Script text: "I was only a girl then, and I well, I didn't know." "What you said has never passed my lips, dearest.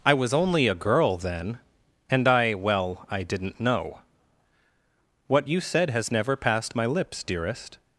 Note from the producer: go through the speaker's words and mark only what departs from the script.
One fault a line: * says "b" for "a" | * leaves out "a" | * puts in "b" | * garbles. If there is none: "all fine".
all fine